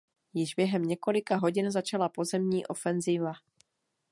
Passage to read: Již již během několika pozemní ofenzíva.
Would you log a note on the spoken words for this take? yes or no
yes